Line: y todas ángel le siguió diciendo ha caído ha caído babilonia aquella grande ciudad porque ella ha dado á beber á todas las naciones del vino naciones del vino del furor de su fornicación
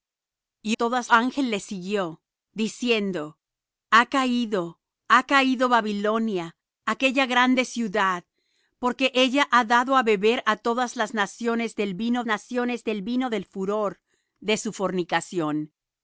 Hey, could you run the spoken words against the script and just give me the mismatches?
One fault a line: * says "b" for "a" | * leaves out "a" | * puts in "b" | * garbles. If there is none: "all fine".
all fine